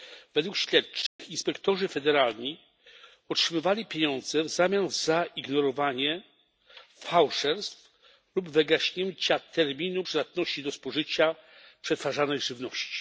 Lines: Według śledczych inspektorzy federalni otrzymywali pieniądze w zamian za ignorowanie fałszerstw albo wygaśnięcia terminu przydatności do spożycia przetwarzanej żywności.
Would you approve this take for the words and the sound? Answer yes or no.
no